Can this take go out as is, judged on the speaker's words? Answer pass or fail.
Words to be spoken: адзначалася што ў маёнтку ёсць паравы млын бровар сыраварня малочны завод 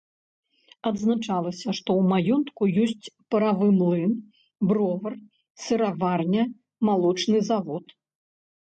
pass